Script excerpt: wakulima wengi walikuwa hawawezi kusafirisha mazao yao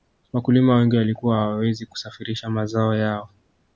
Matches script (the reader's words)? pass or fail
pass